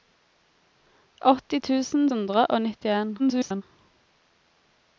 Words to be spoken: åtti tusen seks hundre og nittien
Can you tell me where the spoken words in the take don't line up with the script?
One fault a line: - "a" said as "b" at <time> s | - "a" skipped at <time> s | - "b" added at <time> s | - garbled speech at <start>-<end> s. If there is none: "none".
- "seks" skipped at 2.1 s
- garbled speech at 3.2-3.6 s